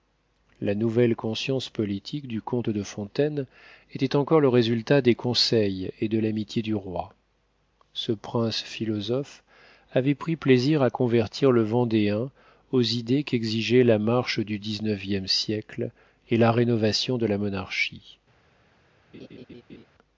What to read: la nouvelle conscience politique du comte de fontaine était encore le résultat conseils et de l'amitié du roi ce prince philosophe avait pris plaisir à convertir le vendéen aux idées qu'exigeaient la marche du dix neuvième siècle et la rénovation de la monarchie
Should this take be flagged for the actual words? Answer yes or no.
yes